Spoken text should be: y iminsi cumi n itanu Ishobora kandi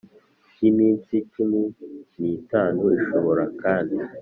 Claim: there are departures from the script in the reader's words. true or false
false